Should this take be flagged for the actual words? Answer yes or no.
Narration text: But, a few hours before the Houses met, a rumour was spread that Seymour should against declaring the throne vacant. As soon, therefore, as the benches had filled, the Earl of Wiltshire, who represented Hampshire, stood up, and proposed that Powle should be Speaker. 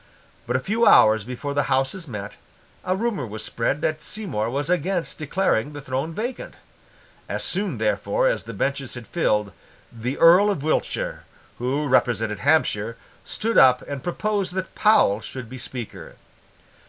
yes